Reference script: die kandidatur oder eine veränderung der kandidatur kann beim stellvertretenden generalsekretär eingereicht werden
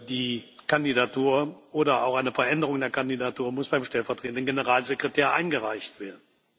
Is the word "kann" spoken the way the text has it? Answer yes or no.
no